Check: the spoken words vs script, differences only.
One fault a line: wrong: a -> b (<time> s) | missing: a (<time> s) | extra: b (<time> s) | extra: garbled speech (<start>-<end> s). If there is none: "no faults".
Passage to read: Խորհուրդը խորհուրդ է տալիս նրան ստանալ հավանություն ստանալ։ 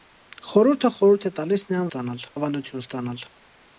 no faults